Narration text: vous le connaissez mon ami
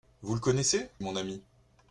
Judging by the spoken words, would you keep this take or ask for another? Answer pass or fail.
pass